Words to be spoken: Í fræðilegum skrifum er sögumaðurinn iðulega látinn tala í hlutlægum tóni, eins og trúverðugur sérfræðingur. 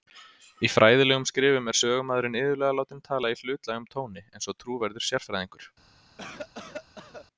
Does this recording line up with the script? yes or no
yes